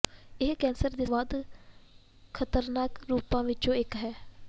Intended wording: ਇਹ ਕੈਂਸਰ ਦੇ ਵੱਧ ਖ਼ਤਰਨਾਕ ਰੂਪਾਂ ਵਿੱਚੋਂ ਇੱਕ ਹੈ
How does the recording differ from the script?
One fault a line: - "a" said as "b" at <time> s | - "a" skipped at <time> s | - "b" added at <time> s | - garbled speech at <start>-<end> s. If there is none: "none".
none